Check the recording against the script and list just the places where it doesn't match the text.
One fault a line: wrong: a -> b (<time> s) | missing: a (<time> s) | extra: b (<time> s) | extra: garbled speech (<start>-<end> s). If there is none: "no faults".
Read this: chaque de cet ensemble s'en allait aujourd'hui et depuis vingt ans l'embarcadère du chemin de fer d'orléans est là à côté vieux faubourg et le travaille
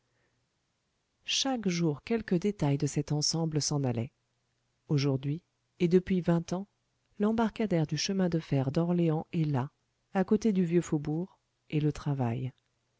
extra: jour quelque détail (1.7 s)
extra: du (10.5 s)